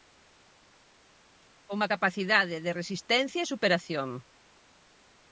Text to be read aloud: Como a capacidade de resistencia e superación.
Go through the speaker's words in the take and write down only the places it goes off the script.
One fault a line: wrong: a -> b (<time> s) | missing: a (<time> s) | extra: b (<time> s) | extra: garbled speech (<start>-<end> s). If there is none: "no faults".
no faults